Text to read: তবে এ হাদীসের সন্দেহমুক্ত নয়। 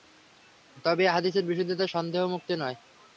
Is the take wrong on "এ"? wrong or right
right